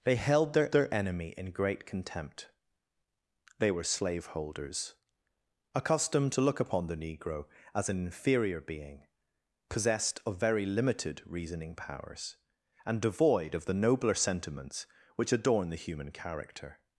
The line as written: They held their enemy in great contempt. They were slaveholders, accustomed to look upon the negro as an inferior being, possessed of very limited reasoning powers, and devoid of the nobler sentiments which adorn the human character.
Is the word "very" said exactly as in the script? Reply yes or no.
yes